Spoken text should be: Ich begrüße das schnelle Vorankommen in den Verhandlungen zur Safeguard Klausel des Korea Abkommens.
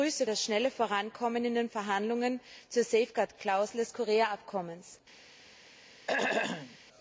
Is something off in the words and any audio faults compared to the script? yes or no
yes